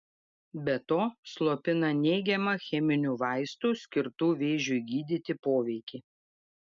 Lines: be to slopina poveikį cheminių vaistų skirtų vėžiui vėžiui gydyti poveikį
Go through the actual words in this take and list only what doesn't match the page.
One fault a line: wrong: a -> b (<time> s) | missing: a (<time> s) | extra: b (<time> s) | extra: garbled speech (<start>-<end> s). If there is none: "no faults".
wrong: poveikį -> neigiamą (2.0 s)
missing: vėžiui (4.8 s)